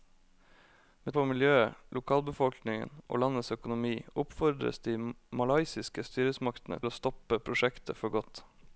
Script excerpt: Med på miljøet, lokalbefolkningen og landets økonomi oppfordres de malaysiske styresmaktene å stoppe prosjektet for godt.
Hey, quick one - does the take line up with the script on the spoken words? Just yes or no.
yes